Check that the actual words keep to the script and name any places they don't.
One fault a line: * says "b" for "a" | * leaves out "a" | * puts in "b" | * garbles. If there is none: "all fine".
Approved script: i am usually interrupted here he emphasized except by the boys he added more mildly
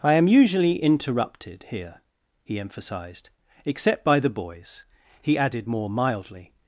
all fine